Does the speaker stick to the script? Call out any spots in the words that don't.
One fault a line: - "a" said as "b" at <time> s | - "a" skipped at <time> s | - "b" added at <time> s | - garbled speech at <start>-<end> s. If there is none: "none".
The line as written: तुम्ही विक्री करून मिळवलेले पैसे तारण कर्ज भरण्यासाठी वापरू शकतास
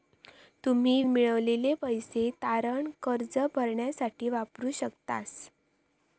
- "विक्री करून" skipped at 1.0 s